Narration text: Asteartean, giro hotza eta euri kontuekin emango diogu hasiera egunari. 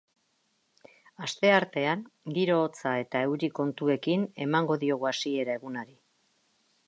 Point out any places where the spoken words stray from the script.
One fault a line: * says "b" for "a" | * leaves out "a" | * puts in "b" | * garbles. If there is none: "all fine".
all fine